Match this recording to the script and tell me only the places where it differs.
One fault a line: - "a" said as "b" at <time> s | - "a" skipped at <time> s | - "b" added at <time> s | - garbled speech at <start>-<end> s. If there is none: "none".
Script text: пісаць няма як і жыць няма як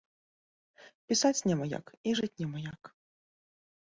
none